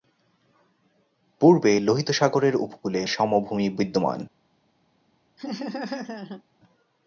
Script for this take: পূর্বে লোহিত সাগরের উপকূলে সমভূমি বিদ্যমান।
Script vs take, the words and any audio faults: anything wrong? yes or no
yes